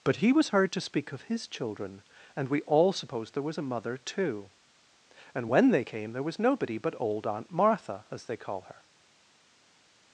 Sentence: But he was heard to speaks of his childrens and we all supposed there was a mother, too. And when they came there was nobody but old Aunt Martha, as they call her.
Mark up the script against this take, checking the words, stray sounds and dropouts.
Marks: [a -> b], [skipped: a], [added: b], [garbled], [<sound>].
But he was heard to [speaks -> speak] of his [childrens -> children] and we all supposed there was a mother, too. And when they came there was nobody but old Aunt Martha, as they call her.